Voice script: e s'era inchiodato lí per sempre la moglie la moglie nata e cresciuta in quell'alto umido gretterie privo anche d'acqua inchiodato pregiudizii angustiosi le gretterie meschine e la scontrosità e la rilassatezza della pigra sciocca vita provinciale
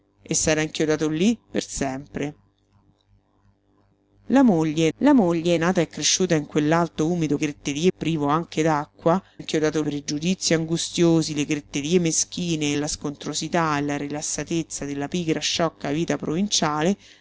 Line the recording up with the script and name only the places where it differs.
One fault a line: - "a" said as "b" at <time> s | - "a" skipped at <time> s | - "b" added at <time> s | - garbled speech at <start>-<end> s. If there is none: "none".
none